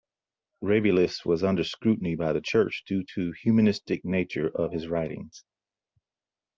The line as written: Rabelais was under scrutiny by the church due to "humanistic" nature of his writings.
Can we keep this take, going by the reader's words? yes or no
yes